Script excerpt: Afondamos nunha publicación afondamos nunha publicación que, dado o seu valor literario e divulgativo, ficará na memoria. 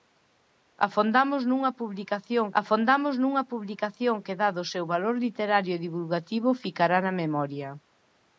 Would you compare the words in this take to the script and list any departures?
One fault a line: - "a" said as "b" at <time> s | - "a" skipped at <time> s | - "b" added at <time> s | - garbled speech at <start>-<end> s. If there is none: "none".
none